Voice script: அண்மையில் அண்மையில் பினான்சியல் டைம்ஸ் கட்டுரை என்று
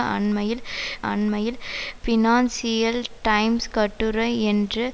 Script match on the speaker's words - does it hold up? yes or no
yes